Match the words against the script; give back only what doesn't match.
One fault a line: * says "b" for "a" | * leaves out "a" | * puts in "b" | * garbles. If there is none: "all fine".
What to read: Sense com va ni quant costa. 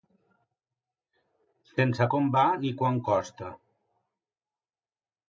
all fine